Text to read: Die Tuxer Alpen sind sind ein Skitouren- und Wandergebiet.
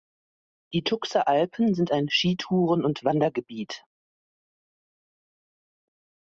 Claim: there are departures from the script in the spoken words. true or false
true